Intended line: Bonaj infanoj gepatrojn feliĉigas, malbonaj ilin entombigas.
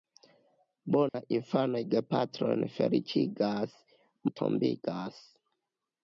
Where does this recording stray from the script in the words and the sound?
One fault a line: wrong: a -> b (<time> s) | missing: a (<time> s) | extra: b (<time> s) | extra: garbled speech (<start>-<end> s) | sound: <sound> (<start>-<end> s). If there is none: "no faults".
sound: dropout (1.1-1.1 s)
missing: malbonaj ilin (3.8 s)